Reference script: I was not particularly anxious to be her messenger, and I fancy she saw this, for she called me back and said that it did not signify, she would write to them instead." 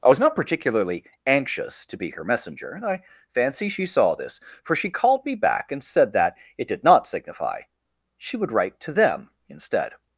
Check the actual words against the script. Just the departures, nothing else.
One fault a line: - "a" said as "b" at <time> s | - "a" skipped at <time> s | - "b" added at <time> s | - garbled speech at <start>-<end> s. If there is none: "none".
none